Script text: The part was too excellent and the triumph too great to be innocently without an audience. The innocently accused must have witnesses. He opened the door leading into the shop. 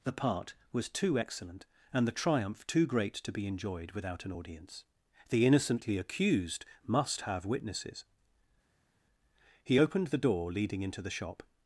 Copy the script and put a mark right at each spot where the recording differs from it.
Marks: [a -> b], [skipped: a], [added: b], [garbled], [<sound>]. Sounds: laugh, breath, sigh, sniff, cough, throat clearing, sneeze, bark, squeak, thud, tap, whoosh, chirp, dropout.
The part was too excellent and the triumph too great to be [innocently -> enjoyed] without an audience. The innocently accused must have witnesses. He opened the door leading into the shop.